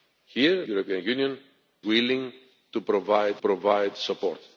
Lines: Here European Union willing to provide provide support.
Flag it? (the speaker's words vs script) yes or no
no